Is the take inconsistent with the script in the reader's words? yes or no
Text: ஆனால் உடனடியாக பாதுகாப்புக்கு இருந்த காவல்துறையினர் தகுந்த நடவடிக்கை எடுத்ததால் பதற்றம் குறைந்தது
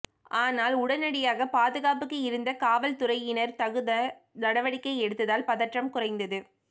no